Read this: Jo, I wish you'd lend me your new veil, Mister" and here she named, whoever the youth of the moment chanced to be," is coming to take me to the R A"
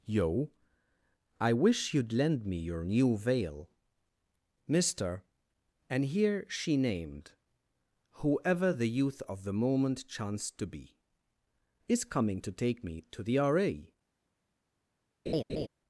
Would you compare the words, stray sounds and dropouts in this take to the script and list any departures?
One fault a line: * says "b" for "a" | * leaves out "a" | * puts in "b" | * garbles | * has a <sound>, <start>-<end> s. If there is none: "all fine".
* says "Yo" for "Jo"
* has a laugh, 15.3-15.7 s